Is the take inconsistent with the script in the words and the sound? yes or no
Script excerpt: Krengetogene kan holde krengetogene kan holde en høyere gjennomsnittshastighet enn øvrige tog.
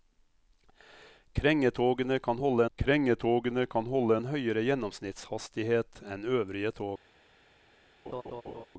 yes